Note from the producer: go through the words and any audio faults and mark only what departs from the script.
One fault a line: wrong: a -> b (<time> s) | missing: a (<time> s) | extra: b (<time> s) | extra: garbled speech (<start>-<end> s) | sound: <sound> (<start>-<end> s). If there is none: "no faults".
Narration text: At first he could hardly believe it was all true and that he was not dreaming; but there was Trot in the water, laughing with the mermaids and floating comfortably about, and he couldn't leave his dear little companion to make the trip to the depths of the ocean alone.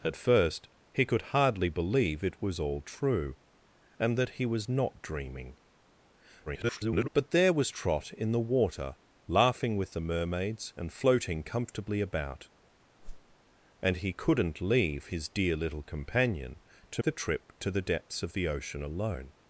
extra: garbled speech (6.5-7.1 s)
sound: whoosh (13.0-13.4 s)
missing: make (17.0 s)